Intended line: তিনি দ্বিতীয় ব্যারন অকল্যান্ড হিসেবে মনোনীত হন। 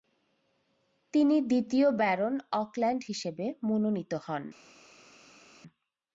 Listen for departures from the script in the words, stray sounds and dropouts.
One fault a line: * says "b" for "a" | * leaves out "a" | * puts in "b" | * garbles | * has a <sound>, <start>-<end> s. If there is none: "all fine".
all fine